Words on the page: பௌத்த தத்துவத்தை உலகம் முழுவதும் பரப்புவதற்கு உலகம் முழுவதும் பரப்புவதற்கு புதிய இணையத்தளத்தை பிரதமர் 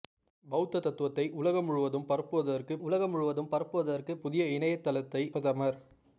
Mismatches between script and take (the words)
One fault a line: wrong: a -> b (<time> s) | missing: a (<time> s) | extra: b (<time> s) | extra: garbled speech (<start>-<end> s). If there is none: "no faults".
no faults